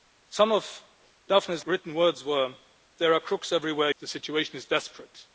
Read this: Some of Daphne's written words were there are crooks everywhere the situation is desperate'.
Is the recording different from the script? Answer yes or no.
no